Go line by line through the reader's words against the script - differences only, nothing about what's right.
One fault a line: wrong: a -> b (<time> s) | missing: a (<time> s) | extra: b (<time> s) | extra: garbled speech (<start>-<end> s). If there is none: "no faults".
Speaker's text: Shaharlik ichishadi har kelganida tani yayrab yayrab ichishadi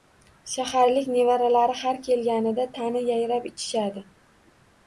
wrong: ichishadi -> nevaralari (1.1 s)
missing: yayrab (3.5 s)